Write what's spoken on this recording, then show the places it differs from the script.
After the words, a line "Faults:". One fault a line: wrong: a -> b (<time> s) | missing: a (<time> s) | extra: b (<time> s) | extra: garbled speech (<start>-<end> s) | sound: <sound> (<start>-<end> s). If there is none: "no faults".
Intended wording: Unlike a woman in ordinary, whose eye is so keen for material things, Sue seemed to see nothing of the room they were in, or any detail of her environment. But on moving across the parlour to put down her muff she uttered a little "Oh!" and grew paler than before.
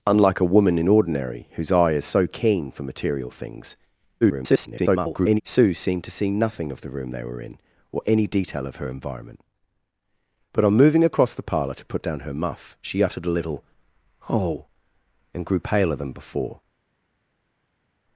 Unlike a woman in ordinary, whose eye is so keen for material things, [garbled] Sue seemed to see nothing of the room they were in, or any detail of her environment. But on moving across the parlour to put down her muff she uttered a little "Oh!" and grew paler than before.
Faults:
extra: garbled speech (4.2-5.4 s)